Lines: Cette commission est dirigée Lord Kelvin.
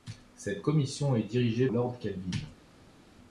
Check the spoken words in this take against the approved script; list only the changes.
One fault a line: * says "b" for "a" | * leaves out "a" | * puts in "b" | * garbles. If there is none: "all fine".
all fine